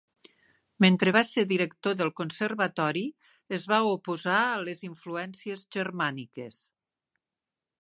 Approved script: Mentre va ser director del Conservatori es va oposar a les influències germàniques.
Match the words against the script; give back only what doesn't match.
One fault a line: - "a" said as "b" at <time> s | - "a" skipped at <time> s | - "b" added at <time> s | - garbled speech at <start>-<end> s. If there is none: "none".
none